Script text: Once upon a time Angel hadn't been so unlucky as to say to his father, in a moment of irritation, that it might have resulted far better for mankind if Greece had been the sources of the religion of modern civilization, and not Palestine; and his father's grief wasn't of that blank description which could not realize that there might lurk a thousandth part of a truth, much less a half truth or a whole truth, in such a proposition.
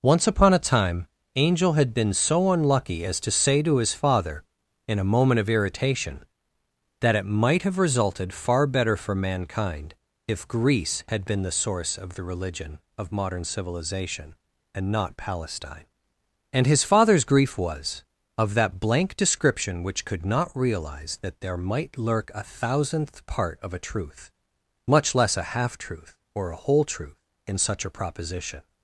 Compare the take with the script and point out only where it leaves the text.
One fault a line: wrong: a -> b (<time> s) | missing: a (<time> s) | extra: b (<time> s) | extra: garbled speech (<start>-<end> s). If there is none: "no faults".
wrong: hadn't -> had (1.7 s)
wrong: sources -> source (11.6 s)
wrong: wasn't -> was (17.6 s)